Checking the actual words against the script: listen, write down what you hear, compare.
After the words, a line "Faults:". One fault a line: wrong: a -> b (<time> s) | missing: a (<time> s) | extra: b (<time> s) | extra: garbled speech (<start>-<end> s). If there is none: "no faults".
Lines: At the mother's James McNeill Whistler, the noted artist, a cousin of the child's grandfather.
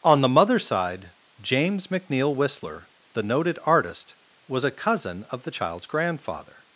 On the mother's side James McNeill Whistler, the noted artist, was a cousin of the child's grandfather.
Faults:
wrong: At -> On (0.0 s)
extra: side (0.7 s)
extra: was (4.5 s)